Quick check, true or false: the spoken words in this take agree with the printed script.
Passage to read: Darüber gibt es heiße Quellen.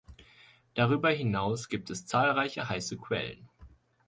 false